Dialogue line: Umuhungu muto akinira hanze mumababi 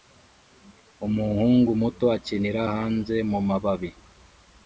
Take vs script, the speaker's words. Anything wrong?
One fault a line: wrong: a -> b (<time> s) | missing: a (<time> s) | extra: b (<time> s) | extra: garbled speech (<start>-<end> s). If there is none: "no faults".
no faults